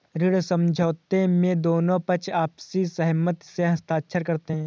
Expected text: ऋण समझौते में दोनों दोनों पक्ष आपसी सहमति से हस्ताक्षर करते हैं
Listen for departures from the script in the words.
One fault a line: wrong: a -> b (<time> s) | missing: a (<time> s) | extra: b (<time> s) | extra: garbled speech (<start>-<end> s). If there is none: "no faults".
missing: दोनों (2.0 s)